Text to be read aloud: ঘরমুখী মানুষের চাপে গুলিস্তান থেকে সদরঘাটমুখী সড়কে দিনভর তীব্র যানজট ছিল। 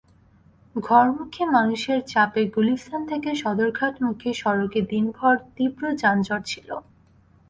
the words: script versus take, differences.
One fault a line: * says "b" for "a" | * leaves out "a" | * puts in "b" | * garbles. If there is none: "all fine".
all fine